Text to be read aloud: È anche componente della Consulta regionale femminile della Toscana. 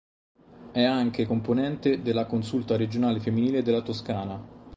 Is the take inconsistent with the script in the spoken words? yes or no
no